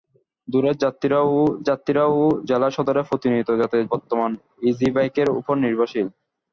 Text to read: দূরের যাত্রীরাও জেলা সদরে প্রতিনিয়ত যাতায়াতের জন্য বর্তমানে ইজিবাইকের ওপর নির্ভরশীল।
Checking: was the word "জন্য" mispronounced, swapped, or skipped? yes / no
yes